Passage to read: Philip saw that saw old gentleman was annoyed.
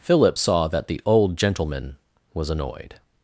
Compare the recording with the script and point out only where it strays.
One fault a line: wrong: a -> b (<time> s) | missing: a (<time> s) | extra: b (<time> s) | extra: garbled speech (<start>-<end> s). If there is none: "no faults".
wrong: saw -> the (0.9 s)